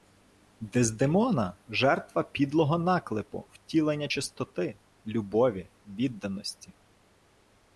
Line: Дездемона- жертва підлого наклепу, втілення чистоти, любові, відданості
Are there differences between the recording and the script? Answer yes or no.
no